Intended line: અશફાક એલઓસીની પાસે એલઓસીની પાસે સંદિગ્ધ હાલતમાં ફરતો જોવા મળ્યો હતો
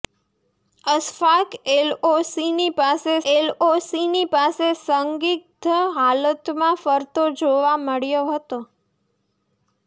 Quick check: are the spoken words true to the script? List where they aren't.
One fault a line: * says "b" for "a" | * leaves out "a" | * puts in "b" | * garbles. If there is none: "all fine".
all fine